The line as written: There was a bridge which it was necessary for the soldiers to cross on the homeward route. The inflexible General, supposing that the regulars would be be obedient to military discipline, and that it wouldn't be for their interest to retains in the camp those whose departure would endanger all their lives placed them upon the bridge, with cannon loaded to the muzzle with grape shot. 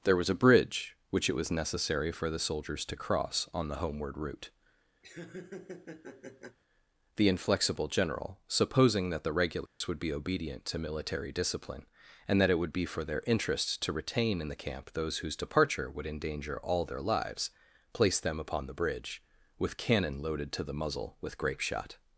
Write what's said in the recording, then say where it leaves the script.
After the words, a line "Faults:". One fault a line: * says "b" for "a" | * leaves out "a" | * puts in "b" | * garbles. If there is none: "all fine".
There was a bridge which it was necessary for the soldiers to cross on the homeward route. The inflexible General, supposing that the regulars would be obedient to military discipline, and that it would be for their interest to retain in the camp those whose departure would endanger all their lives placed them upon the bridge, with cannon loaded to the muzzle with grape shot.
Faults:
* leaves out "be"
* says "would" for "wouldn't"
* says "retain" for "retains"